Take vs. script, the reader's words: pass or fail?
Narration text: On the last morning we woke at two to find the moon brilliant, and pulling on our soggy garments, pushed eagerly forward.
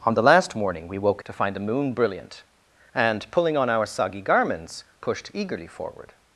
fail